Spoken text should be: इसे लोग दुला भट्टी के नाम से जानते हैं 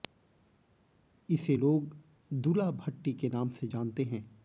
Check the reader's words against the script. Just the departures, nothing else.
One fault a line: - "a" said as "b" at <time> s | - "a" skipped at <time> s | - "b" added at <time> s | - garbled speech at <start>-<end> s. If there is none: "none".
none